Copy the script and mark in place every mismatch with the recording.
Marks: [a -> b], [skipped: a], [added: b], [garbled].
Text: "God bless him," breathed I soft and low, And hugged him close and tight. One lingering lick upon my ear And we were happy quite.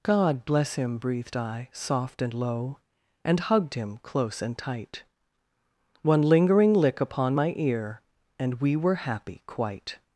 "God bless him," breathed I soft and low, And hugged him close and tight. One lingering lick upon my ear And we were happy quite.